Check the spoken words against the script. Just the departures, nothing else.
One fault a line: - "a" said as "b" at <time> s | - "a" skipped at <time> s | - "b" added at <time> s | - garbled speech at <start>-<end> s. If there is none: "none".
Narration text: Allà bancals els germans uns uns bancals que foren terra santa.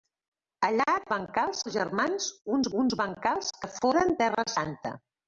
none